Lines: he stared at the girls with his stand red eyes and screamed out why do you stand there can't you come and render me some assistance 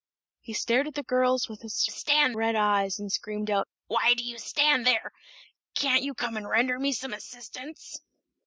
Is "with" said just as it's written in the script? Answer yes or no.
yes